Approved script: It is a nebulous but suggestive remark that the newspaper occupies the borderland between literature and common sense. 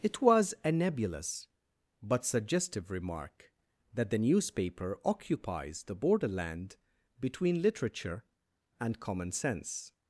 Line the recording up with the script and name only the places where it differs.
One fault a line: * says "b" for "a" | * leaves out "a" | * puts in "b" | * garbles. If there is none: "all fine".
* says "was" for "is"